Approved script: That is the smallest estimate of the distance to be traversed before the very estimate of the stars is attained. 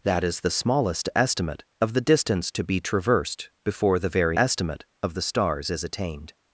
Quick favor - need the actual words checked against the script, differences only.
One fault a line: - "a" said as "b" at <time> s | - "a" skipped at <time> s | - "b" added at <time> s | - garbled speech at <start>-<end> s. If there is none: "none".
none